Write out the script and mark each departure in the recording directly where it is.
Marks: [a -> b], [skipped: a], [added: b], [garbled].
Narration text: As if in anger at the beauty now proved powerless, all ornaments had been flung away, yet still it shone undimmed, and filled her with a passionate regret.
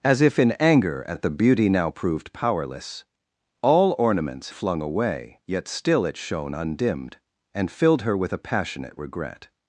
As if in anger at the beauty now proved powerless, all ornaments [skipped: had been] flung away, yet still it shone undimmed, and filled her with a passionate regret.